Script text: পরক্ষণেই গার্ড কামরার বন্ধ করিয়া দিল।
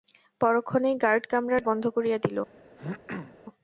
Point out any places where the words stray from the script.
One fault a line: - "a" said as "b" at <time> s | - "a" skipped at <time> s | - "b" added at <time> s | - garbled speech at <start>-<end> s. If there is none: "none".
none